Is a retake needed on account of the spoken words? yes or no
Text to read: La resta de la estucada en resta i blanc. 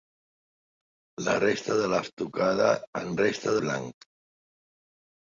no